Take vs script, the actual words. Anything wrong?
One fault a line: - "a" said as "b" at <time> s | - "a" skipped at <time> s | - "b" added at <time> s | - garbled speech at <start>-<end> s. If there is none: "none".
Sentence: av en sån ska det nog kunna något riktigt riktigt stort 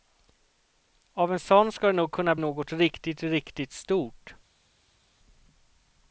none